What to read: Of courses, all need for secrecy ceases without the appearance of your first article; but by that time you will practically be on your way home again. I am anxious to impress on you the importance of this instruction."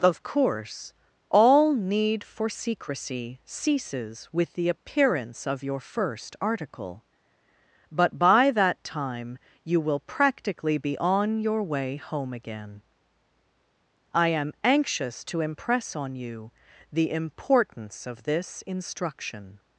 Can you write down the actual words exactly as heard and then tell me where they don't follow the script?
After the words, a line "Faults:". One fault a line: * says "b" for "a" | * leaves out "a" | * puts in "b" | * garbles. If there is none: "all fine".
Of course, all need for secrecy ceases with the appearance of your first article; but by that time you will practically be on your way home again. I am anxious to impress on you the importance of this instruction."
Faults:
* says "course" for "courses"
* says "with" for "without"